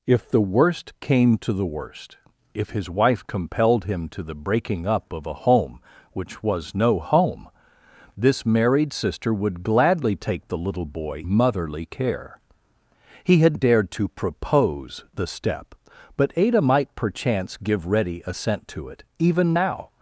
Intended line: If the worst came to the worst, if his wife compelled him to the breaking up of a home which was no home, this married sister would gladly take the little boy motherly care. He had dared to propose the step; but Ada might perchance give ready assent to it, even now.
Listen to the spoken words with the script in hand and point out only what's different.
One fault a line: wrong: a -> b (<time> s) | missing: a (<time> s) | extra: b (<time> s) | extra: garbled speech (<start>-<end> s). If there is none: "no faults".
no faults